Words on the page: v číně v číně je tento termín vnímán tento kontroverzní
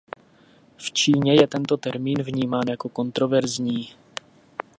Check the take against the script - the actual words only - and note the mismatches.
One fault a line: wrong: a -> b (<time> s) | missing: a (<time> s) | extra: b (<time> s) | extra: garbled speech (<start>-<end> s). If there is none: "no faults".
missing: v číně (1.4 s)
wrong: tento -> jako (2.7 s)